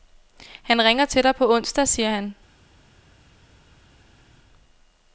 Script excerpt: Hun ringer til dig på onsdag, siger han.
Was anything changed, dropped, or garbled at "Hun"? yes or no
yes